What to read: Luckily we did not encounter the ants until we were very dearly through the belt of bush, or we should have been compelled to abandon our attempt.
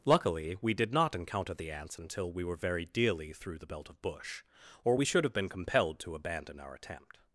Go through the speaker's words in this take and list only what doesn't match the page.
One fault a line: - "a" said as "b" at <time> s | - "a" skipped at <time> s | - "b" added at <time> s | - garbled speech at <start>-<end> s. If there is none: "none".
none